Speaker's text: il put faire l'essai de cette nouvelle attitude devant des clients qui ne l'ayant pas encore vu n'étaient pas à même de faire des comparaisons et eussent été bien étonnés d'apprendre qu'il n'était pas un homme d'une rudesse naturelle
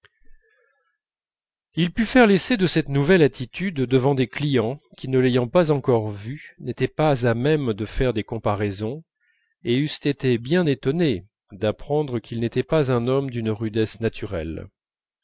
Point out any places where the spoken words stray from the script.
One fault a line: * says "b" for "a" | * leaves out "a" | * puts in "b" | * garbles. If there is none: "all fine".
all fine